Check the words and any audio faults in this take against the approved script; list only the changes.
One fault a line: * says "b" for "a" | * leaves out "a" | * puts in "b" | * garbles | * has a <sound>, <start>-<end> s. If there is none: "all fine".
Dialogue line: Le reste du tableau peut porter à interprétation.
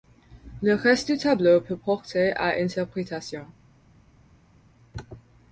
all fine